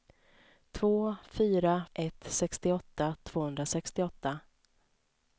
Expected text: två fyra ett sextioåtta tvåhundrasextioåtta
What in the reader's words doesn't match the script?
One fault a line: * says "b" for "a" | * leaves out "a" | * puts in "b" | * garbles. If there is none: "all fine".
all fine